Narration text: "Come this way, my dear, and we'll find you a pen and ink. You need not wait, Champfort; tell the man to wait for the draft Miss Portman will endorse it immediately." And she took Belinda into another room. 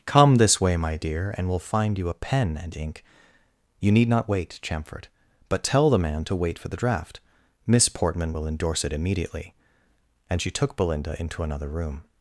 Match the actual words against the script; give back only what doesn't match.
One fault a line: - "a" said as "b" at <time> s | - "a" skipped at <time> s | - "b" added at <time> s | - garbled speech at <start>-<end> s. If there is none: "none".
- "but" added at 5.5 s